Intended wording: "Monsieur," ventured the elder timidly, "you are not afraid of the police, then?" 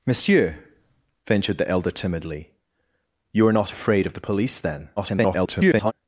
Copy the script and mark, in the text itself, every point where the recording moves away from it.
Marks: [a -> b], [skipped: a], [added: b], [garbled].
"Monsieur," ventured the elder timidly, "you are not afraid of the police, then?" [garbled]